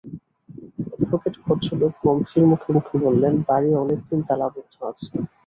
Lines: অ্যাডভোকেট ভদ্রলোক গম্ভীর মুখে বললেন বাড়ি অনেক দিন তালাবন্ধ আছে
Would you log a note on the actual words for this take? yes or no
yes